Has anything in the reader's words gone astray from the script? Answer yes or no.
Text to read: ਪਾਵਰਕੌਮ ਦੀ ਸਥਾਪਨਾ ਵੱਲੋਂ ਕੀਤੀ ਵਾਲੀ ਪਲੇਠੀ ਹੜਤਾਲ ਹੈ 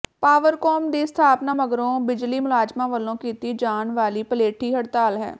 yes